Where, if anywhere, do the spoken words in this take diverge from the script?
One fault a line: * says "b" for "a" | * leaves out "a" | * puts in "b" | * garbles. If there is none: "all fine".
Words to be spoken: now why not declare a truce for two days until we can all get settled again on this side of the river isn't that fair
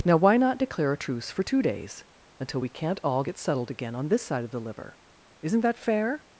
* says "can't" for "can"
* says "liver" for "river"